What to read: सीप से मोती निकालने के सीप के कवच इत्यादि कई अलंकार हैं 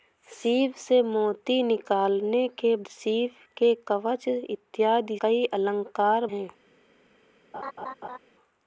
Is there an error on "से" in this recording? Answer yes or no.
no